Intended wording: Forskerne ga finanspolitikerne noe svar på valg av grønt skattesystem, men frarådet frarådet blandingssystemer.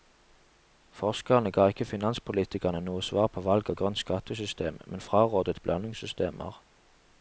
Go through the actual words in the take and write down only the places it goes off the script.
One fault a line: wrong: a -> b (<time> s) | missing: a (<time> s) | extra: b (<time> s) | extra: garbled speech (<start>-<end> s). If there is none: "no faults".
extra: ikke (1.7 s)
missing: frarådet (5.6 s)